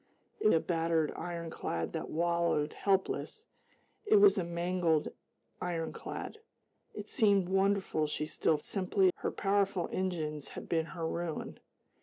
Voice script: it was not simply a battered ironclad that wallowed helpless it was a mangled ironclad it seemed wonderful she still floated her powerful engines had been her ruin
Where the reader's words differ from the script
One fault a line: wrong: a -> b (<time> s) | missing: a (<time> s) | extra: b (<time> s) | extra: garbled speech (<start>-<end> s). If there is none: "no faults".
missing: was not simply (0.5 s)
wrong: floated -> simply (8.6 s)